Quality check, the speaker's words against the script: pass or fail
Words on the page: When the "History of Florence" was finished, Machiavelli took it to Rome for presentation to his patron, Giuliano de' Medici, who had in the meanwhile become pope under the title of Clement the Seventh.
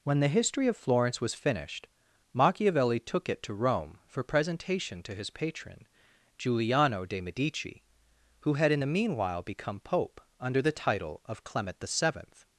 pass